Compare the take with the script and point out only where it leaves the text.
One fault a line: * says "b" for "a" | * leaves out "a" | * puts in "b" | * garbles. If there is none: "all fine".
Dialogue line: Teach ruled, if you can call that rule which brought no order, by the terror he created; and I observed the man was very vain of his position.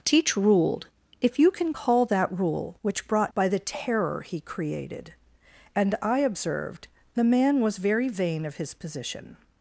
* leaves out "no order"